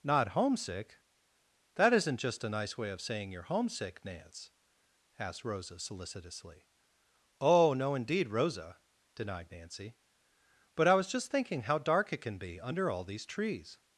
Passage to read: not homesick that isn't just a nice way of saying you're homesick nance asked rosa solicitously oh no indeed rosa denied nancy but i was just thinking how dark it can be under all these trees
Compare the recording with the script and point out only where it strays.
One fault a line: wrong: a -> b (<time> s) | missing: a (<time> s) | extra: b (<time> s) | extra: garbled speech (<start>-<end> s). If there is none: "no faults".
no faults